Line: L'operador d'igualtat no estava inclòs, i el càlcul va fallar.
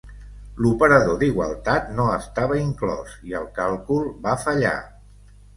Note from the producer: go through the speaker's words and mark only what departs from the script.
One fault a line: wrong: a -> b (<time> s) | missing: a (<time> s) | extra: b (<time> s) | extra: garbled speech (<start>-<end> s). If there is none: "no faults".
no faults